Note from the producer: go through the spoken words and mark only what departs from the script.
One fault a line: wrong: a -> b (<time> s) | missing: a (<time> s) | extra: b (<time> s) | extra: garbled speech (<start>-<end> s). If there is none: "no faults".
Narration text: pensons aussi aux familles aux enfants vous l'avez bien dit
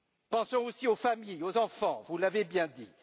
no faults